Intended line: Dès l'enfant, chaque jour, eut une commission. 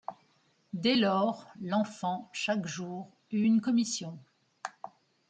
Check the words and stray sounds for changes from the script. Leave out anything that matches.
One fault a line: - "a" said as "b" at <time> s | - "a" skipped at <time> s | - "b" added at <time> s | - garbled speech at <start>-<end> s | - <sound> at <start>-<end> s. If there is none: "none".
- "lors" added at 1.0 s